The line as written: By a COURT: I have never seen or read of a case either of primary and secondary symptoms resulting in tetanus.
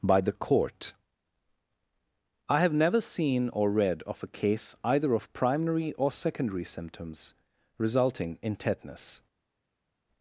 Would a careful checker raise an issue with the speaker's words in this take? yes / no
yes